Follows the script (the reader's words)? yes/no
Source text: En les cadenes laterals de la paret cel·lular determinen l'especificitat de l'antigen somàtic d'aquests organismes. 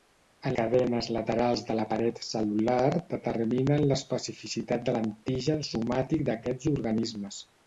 no